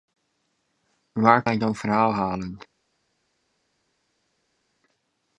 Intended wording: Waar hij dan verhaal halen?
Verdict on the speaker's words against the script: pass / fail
pass